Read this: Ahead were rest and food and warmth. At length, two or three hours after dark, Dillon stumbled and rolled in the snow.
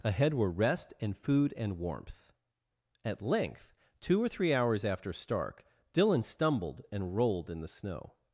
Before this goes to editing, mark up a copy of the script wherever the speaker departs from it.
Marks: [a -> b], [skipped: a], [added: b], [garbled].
Ahead were rest and food and warmth. At length, two or three hours after [dark, -> stark] Dillon stumbled and rolled in the snow.